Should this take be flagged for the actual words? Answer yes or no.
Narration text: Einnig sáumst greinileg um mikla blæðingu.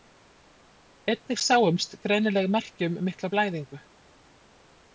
yes